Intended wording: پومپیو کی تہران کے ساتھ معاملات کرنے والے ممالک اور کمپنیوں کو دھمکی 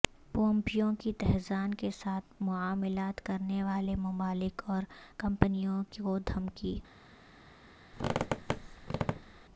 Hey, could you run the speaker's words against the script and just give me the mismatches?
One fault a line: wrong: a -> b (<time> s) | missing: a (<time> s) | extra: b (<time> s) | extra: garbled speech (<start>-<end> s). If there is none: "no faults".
no faults